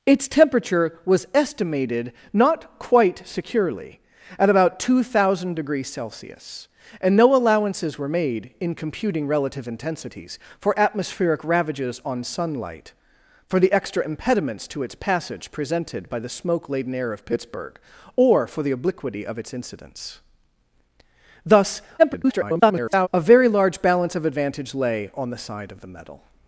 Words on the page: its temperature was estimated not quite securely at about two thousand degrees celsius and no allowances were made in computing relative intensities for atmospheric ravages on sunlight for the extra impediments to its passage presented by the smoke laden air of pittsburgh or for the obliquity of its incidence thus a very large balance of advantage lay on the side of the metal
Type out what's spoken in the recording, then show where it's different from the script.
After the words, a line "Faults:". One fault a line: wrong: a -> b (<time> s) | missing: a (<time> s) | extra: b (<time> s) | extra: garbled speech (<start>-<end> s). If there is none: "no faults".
its temperature was estimated not quite securely at about two thousand degrees celsius and no allowances were made in computing relative intensities for atmospheric ravages on sunlight for the extra impediments to its passage presented by the smoke laden air of pittsburgh or for the obliquity of its incidence thus [garbled] a very large balance of advantage lay on the side of the metal
Faults:
extra: garbled speech (22.0-23.1 s)